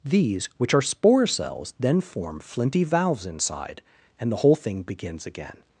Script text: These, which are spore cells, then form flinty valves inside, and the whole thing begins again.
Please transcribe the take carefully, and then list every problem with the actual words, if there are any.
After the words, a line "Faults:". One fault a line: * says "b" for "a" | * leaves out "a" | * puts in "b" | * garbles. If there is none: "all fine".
These, which are spore cells, then form flinty valves inside, and the whole thing begins again.
Faults:
all fine